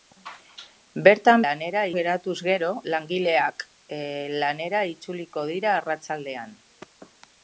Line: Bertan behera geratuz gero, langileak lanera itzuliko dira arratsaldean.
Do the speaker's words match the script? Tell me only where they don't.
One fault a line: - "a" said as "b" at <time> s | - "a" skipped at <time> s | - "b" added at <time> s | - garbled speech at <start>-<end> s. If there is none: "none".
- "behera" said as "lanera" at 1.5 s